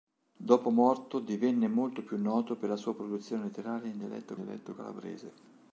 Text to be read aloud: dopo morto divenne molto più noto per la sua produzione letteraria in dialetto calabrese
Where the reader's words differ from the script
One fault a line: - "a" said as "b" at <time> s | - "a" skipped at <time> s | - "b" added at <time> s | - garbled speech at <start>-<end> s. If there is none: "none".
- "dialetto" added at 4.3 s